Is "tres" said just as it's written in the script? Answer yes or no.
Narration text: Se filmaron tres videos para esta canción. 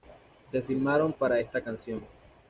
no